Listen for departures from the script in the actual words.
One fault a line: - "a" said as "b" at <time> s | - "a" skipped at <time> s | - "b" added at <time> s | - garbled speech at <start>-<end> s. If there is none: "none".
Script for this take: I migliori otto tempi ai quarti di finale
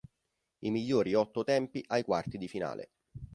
none